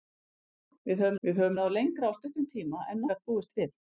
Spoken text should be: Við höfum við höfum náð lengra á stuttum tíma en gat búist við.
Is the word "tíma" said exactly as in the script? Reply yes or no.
yes